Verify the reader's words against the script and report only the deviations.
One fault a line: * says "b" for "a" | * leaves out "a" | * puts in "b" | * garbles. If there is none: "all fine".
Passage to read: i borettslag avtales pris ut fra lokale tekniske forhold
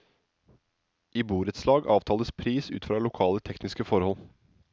all fine